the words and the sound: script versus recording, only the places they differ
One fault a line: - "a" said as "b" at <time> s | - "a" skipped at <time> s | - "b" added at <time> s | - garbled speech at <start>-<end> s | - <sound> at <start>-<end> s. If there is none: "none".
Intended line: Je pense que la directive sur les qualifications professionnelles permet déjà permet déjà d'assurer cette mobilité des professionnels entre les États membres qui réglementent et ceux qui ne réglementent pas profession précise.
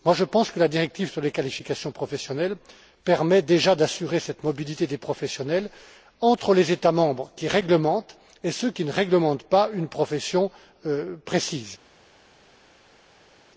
- "permet déjà" skipped at 3.8 s
- "une" added at 9.7 s